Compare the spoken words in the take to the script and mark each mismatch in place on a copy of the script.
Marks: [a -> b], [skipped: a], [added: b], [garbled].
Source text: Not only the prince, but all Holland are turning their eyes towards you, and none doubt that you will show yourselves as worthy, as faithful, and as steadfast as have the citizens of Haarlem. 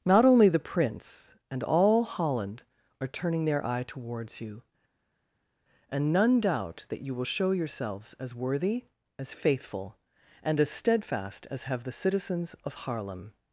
Not only the prince, [but -> and] all Holland are turning their [eyes -> eye] towards you, and none doubt that you will show yourselves as worthy, as faithful, and as steadfast as have the citizens of Haarlem.